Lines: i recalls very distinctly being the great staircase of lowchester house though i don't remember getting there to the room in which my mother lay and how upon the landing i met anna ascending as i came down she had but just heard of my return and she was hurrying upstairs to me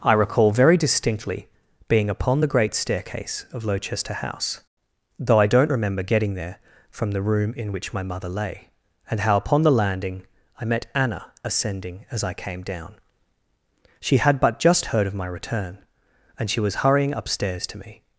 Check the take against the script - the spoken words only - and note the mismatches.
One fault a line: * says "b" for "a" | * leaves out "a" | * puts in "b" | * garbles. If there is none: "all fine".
* says "recall" for "recalls"
* puts in "upon"
* says "from" for "to"